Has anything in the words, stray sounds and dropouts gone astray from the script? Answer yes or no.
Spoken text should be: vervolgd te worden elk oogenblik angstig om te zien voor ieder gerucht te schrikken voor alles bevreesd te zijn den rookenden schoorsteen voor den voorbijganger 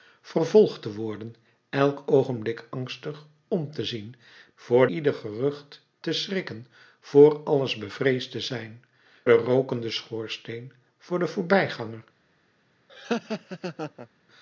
yes